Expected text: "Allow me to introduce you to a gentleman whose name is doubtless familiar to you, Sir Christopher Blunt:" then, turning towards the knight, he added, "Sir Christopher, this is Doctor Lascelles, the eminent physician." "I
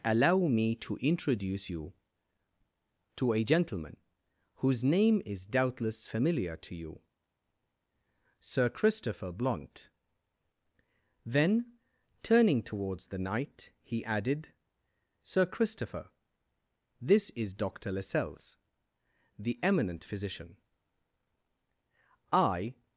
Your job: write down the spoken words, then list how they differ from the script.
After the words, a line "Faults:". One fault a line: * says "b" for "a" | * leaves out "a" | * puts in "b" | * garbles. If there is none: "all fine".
"Allow me to introduce you to a gentleman whose name is doubtless familiar to you, Sir Christopher Blunt:" then, turning towards the knight, he added, "Sir Christopher, this is Doctor Lascelles, the eminent physician." "I
Faults:
all fine